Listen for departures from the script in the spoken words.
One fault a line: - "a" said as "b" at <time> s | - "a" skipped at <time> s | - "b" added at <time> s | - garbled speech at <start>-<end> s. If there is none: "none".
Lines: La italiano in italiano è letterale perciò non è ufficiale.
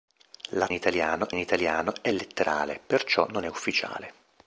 none